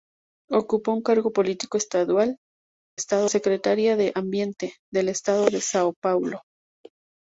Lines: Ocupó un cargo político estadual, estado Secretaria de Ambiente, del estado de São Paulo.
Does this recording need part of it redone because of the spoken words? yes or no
no